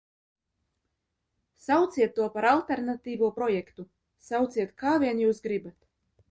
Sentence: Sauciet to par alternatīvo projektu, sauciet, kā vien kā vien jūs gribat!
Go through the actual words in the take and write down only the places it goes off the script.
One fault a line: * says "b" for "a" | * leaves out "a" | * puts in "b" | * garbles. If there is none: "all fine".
* leaves out "kā vien"